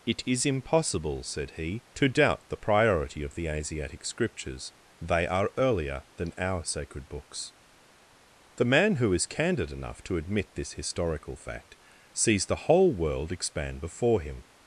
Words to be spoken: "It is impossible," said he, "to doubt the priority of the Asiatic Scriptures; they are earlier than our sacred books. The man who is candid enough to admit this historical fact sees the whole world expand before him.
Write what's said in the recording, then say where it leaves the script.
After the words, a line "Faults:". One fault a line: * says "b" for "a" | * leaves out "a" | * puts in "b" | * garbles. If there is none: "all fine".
"It is impossible," said he, "to doubt the priority of the Asiatic Scriptures; they are earlier than our sacred books. The man who is candid enough to admit this historical fact sees the whole world expand before him.
Faults:
all fine